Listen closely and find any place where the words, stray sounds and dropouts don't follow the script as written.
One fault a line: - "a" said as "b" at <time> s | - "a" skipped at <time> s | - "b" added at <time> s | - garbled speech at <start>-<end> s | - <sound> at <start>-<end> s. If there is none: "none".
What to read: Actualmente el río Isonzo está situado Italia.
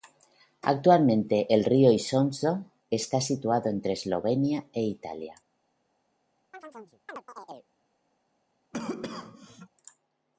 - "entre Eslovenia e" added at 3.7 s
- chirp at 6.5-7.7 s
- cough at 8.7-9.7 s